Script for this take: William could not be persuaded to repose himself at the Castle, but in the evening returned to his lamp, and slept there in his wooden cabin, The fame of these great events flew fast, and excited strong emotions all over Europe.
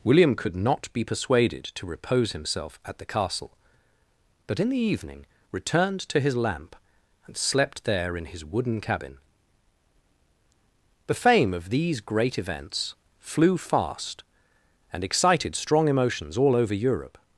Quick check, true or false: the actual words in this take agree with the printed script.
true